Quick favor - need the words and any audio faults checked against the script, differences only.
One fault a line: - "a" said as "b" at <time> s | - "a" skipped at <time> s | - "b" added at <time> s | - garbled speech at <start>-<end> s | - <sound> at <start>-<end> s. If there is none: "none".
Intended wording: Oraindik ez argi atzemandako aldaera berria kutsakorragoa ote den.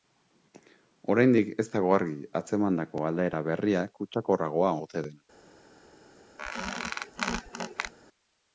- "dago" added at 1.8 s
- squeak at 6.4-7.9 s